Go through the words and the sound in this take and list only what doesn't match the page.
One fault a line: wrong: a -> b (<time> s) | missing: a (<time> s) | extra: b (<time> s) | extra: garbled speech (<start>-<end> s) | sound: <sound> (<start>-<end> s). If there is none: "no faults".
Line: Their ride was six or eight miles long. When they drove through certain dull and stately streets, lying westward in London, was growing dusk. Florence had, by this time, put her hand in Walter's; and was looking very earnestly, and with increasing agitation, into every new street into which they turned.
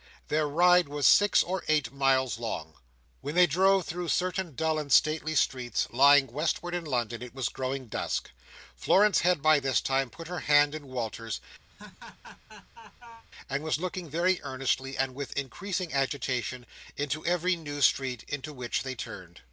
extra: it (7.2 s)
sound: laugh (11.7-13.3 s)